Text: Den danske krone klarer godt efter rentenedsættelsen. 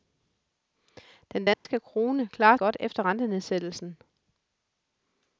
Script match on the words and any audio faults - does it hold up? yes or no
no